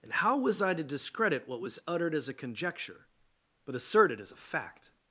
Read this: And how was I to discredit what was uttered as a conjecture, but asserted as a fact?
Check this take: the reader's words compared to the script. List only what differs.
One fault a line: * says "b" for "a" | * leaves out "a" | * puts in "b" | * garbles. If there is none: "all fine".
all fine